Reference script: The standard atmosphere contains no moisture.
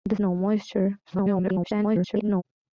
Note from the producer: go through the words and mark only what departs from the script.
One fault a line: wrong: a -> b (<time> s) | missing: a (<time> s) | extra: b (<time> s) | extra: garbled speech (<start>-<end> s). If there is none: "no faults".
missing: standard atmosphere contains (0.1 s)
extra: garbled speech (1.0-2.4 s)